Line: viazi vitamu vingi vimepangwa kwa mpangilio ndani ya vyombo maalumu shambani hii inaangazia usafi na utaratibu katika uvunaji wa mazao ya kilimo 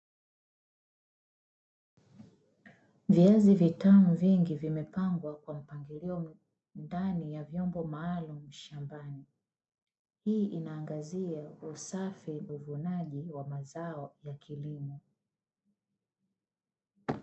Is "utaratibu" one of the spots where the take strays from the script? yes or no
yes